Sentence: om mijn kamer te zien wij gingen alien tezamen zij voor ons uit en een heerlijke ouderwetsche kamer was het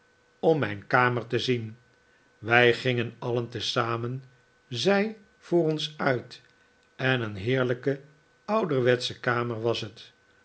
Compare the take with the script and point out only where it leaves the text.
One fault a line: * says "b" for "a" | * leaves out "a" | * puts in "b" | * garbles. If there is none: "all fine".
all fine